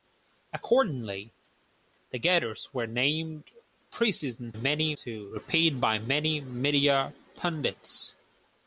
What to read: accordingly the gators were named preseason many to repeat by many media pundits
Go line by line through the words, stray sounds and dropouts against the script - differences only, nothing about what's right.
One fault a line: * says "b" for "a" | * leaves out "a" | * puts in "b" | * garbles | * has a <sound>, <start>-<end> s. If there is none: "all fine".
all fine